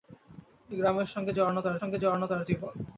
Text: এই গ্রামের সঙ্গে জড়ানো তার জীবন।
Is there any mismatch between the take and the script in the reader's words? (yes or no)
yes